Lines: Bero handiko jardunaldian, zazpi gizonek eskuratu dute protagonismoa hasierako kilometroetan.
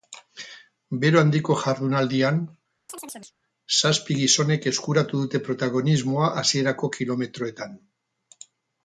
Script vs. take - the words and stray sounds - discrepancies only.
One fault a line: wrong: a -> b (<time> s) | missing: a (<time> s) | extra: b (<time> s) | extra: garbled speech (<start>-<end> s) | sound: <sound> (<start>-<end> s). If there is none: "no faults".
sound: chirp (2.9-3.3 s)